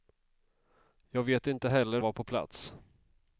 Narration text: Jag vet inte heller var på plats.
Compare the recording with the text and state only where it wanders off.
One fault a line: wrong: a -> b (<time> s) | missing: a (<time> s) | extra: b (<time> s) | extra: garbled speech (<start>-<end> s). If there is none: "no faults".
no faults